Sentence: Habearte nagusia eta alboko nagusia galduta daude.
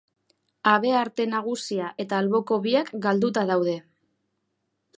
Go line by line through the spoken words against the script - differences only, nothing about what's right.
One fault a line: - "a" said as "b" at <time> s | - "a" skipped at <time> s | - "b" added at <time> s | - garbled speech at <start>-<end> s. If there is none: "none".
- "nagusia" said as "biak" at 2.7 s